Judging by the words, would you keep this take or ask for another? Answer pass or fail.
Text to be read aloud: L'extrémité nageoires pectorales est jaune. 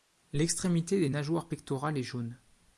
fail